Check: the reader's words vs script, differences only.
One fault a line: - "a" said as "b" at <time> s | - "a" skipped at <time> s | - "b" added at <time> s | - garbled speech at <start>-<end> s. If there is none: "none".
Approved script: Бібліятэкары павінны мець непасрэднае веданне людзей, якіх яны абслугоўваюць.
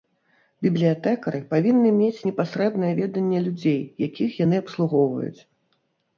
none